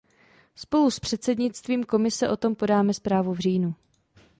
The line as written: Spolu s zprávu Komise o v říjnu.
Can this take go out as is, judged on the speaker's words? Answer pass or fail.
fail